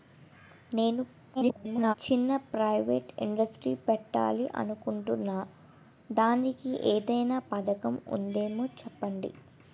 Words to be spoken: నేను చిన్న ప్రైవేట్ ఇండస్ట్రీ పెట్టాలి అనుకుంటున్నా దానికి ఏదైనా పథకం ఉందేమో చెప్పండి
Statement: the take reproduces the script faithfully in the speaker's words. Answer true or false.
false